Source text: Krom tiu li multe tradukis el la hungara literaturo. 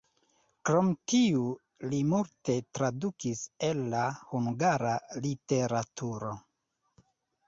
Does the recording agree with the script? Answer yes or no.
yes